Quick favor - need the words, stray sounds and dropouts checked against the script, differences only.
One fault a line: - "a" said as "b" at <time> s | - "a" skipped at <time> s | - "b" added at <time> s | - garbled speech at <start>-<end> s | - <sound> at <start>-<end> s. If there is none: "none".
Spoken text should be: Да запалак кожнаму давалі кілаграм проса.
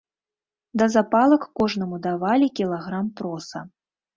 none